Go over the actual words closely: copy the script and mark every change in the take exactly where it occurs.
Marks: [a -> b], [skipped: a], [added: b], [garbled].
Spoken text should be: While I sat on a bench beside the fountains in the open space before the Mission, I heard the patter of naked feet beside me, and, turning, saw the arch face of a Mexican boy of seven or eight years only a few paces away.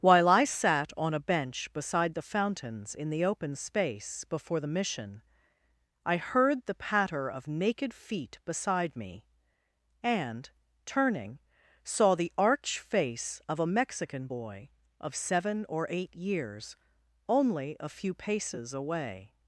While I sat on a bench beside the fountains in the open space before the Mission, I heard the patter of naked feet beside me, and, turning, saw the arch face of a Mexican boy of seven or eight years only a few paces away.